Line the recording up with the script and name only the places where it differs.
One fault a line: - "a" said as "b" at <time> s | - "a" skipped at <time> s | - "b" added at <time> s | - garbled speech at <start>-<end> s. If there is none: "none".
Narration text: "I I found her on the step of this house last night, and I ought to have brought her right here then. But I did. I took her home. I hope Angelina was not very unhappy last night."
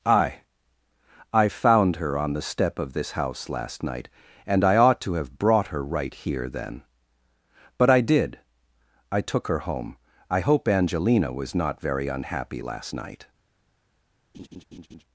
none